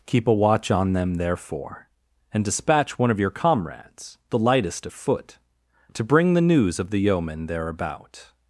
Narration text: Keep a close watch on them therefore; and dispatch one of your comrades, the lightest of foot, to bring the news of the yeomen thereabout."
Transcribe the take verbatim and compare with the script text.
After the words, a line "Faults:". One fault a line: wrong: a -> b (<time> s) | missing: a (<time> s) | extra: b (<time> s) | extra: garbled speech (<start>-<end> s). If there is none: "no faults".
Keep a watch on them therefore; and dispatch one of your comrades, the lightest of foot, to bring the news of the yeomen thereabout."
Faults:
missing: close (0.3 s)